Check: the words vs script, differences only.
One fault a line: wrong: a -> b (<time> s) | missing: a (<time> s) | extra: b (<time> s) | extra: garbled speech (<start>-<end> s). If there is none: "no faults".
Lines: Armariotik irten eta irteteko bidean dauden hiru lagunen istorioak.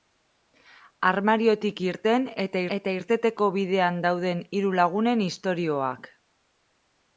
extra: eta (2.8 s)